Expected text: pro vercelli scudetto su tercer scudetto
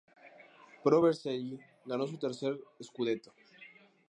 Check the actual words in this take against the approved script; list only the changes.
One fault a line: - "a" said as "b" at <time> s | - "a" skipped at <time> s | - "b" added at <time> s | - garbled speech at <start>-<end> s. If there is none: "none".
- "scudetto" said as "ganó" at 1.8 s